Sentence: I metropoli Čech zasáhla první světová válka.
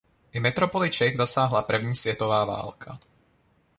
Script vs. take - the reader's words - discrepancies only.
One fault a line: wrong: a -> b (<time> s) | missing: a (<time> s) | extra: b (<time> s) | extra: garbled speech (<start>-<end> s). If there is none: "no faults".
no faults